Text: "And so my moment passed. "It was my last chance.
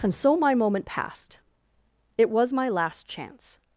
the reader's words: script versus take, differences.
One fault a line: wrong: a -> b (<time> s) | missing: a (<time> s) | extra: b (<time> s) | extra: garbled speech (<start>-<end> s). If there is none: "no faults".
no faults